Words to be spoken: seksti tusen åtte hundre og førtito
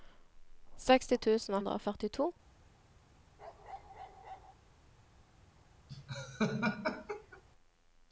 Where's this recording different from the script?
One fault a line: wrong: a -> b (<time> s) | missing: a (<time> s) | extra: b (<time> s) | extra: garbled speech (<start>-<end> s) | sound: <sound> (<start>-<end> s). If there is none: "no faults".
missing: åtte (1.6 s)
sound: bark (3.4-4.5 s)
sound: laugh (5.9-7.4 s)